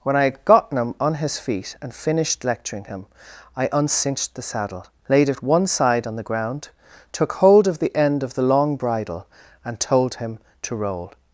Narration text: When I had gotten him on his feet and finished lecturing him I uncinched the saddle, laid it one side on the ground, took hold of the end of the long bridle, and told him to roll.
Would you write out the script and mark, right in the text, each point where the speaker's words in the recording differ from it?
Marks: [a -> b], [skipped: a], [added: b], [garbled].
When I had gotten him on his feet and finished lecturing him I uncinched the saddle, laid it one side on the ground, took hold of the end of the long bridle, and told him to roll.